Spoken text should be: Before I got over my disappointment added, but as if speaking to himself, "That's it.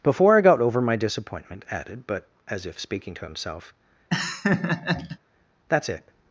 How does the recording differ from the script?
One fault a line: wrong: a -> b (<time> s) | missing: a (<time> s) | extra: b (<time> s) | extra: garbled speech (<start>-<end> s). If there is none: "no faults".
no faults